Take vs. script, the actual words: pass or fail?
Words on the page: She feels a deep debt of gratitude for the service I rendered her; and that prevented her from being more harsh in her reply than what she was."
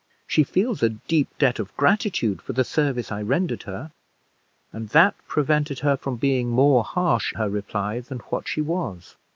fail